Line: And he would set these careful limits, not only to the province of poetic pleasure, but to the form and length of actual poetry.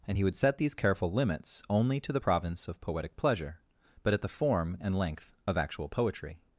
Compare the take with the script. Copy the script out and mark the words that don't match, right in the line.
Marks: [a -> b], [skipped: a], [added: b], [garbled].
And he would set these careful limits, [skipped: not] only to the province of poetic pleasure, but [to -> at] the form and length of actual poetry.